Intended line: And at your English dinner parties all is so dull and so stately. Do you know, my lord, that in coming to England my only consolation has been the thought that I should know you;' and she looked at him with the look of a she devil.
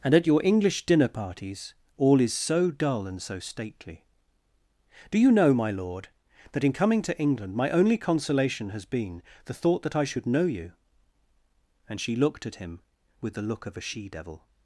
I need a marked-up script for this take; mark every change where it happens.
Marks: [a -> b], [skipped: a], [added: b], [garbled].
And at your English dinner parties all is so dull and so stately. Do you know, my lord, that in coming to England my only consolation has been the thought that I should know you;' and she looked at him with the look of a she devil.